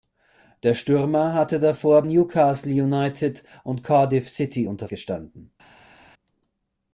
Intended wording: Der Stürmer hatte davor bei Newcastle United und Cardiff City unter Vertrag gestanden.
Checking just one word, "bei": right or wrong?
wrong